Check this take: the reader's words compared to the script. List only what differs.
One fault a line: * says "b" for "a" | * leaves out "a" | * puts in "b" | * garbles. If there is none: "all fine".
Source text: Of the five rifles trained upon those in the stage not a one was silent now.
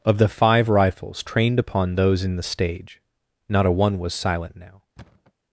all fine